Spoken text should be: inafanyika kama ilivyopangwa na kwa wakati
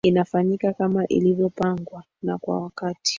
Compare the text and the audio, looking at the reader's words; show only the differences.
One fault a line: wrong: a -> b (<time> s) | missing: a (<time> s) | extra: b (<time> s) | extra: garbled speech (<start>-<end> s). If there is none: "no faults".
no faults